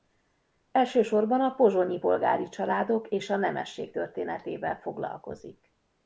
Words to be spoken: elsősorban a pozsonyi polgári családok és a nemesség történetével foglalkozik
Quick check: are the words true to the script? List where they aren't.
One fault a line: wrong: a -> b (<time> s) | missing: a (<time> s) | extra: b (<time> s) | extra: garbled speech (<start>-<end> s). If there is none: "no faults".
no faults